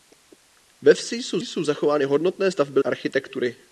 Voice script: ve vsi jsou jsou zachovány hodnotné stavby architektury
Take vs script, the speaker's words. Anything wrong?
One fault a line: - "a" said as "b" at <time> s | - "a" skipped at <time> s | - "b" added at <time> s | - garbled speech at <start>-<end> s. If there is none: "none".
none